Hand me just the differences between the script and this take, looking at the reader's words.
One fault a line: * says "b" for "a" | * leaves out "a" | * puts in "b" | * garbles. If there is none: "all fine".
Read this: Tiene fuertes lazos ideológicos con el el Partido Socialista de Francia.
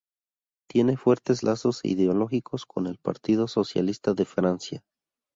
* leaves out "el"